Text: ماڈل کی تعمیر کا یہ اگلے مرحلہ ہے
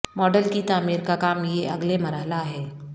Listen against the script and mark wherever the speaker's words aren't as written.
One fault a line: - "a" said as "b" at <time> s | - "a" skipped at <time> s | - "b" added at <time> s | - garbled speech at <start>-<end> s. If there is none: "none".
- "کام" added at 1.1 s